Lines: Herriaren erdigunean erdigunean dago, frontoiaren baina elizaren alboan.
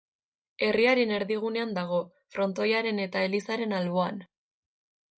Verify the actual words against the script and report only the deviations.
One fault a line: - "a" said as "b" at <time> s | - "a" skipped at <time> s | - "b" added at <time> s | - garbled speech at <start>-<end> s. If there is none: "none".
- "erdigunean" skipped at 1.8 s
- "baina" said as "eta" at 3.1 s